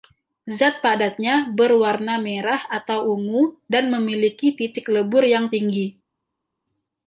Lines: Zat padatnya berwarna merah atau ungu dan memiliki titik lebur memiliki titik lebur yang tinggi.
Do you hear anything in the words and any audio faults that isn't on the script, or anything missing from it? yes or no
yes